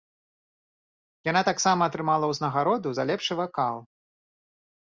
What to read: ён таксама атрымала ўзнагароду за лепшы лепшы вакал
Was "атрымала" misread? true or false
false